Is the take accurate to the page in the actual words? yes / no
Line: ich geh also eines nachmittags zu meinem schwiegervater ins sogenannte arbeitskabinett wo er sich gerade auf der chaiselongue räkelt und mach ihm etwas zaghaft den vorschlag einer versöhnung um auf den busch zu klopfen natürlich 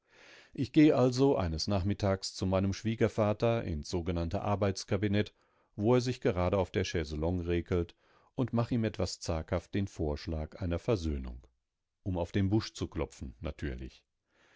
yes